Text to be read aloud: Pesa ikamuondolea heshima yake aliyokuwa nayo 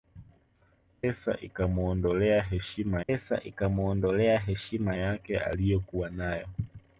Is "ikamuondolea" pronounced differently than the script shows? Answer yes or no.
no